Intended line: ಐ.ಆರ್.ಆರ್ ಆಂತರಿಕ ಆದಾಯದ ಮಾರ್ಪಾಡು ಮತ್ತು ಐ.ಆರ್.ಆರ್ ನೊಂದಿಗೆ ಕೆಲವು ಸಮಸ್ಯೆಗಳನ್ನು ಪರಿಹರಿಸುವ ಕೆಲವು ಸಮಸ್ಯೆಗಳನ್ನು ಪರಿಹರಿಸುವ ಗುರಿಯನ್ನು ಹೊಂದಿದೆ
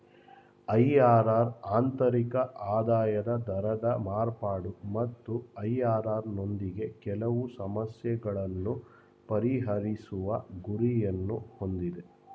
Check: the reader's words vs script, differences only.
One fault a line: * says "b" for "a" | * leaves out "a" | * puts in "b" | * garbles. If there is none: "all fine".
* puts in "ದರದ"
* leaves out "ಕೆಲವು ಸಮಸ್ಯೆಗಳನ್ನು ಪರಿಹರಿಸುವ"